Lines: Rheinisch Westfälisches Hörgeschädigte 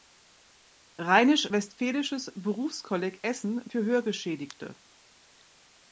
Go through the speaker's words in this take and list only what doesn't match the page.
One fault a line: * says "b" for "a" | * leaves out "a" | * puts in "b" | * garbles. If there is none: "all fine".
* puts in "Berufskolleg Essen für"